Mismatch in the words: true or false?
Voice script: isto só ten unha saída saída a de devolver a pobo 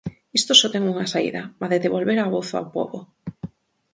true